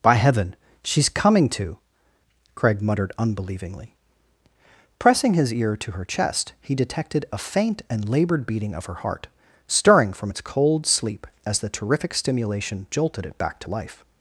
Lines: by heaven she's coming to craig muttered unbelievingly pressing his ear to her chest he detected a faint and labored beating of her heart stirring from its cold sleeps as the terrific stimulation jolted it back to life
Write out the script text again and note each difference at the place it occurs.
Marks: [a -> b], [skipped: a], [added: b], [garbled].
by heaven she's coming to craig muttered unbelievingly pressing his ear to her chest he detected a faint and labored beating of her heart stirring from its cold [sleeps -> sleep] as the terrific stimulation jolted it back to life